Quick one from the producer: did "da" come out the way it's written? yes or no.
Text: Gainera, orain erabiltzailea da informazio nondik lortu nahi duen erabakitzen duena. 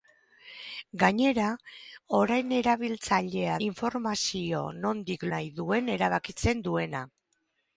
no